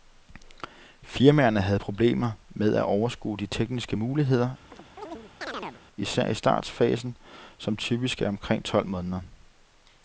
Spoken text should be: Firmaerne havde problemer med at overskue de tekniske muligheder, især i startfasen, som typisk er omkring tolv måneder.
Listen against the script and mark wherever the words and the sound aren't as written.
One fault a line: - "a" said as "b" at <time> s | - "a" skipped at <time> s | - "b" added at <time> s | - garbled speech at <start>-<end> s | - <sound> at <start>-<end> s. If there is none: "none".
- chirp at 4.7-5.8 s